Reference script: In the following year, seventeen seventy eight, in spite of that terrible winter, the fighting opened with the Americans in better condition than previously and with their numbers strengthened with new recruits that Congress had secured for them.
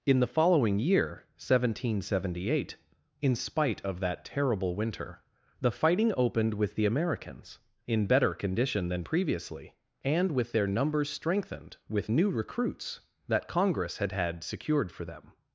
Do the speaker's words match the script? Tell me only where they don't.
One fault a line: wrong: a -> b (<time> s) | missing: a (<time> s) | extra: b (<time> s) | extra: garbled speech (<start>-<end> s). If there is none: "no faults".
extra: had (14.1 s)